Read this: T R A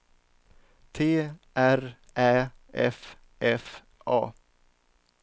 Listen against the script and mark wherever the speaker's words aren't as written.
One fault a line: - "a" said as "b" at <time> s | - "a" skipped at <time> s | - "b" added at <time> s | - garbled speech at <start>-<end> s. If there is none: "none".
- "Ä F F" added at 2.2 s